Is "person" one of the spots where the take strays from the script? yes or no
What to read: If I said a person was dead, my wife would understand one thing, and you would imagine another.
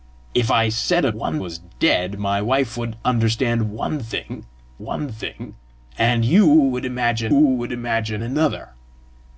yes